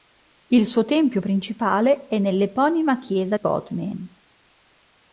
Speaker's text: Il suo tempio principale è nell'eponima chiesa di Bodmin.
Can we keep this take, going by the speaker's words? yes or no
no